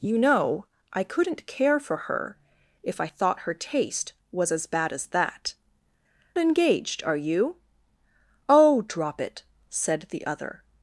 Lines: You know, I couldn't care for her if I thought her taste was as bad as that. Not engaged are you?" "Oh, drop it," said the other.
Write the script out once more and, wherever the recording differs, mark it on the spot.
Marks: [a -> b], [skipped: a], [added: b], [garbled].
You know, I couldn't care for her if I thought her taste was as bad as that. [skipped: Not] engaged are you?" "Oh, drop it," said the other.